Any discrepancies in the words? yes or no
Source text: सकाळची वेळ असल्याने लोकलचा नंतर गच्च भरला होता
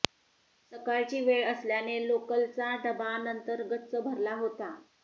yes